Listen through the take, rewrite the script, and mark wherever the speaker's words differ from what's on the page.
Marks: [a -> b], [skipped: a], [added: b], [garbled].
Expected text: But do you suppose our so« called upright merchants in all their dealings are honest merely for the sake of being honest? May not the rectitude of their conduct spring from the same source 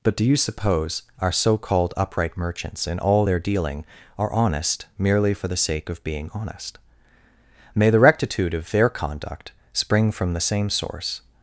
But do you suppose our so« called upright merchants in all their [dealings -> dealing] are honest merely for the sake of being honest? May [skipped: not] the rectitude of their conduct spring from the same source